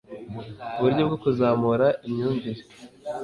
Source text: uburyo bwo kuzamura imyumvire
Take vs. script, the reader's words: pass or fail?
pass